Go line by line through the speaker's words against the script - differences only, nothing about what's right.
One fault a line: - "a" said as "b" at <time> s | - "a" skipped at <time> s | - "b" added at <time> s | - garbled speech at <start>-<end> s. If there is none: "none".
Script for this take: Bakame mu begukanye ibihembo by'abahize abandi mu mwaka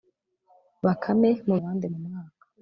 - "begukanye ibihembo by'abahize" skipped at 1.6 s